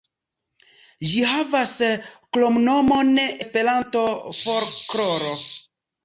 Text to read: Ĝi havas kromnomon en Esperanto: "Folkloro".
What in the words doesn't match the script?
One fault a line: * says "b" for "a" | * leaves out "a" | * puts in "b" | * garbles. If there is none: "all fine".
* leaves out "en"